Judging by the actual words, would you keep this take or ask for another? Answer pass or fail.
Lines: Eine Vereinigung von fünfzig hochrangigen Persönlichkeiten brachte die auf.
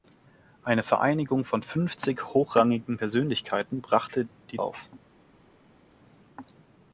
pass